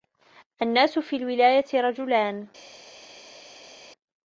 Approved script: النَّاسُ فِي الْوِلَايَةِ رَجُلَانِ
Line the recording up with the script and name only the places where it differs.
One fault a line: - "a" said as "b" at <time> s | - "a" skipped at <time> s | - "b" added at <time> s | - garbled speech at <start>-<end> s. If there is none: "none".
none